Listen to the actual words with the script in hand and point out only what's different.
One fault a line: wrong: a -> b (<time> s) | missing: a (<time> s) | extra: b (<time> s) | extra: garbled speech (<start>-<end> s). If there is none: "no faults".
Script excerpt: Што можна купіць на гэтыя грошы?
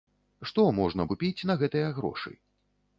no faults